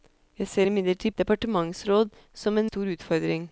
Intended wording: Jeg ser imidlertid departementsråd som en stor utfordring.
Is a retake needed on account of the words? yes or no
no